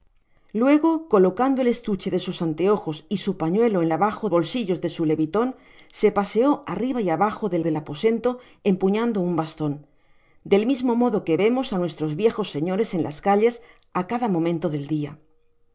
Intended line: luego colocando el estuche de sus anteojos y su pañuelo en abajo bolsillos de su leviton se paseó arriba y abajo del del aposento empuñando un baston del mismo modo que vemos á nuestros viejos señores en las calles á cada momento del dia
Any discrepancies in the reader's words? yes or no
no